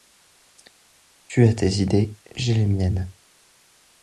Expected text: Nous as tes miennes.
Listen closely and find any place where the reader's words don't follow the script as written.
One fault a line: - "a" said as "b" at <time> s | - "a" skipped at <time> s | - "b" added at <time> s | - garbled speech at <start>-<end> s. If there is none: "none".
- "Nous" said as "Tu" at 1.3 s
- "idées j'ai les" added at 1.7 s